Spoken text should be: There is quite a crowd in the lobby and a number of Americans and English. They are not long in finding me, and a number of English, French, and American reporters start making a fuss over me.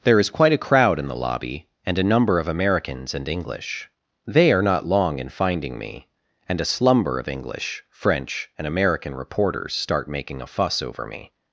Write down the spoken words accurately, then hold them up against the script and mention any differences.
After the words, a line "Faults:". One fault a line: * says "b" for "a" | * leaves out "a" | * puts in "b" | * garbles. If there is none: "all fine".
There is quite a crowd in the lobby and a number of Americans and English. They are not long in finding me, and a slumber of English, French, and American reporters start making a fuss over me.
Faults:
* says "slumber" for "number"